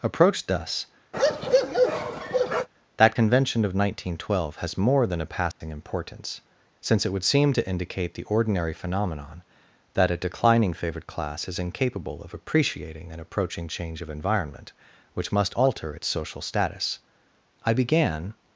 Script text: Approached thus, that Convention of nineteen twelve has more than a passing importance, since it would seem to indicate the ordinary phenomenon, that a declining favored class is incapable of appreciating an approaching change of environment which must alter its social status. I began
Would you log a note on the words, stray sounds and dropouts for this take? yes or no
yes